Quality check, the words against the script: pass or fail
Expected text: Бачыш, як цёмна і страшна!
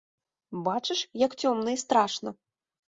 pass